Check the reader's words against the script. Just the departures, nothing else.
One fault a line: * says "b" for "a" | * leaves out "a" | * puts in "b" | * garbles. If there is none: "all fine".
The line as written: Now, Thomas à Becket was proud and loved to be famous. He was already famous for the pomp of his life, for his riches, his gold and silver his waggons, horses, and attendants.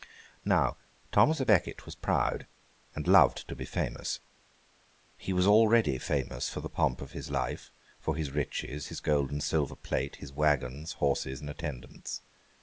* puts in "plate"